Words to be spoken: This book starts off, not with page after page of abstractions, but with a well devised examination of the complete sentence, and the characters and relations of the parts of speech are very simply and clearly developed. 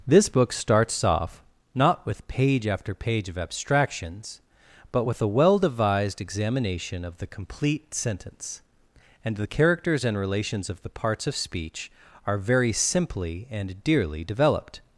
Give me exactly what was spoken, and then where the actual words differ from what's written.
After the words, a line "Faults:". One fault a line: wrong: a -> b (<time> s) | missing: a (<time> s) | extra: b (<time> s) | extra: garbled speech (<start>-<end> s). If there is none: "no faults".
This book starts off, not with page after page of abstractions, but with a well devised examination of the complete sentence, and the characters and relations of the parts of speech are very simply and dearly developed.
Faults:
wrong: clearly -> dearly (13.8 s)